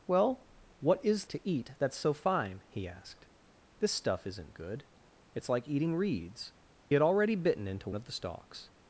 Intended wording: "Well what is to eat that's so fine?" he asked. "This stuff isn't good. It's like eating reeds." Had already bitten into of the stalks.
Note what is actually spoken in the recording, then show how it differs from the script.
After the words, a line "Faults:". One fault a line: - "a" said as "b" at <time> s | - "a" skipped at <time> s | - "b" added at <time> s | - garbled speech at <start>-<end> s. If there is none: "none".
"Well what is to eat that's so fine?" he asked. "This stuff isn't good. It's like eating reeds." Had already bitten into of the stalks.
Faults:
none